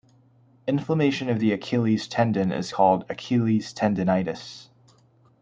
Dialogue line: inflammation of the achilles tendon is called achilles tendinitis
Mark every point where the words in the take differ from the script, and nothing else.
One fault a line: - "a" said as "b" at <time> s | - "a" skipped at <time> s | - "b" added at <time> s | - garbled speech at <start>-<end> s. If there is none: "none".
none